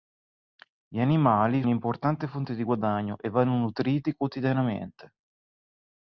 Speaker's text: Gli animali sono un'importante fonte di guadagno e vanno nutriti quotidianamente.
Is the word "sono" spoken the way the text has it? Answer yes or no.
no